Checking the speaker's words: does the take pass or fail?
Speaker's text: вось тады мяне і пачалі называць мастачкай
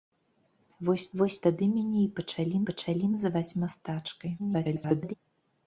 fail